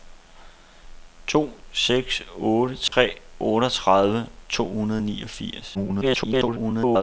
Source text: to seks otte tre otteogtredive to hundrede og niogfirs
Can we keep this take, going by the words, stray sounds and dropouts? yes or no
no